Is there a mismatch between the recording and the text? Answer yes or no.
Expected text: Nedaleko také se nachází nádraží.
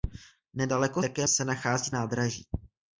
no